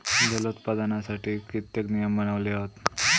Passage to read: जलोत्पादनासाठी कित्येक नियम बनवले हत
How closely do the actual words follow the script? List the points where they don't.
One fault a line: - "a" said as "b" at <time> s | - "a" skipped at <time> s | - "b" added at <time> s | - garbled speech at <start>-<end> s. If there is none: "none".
none